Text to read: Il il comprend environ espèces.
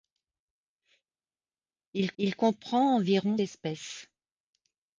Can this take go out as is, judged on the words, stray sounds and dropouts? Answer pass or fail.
pass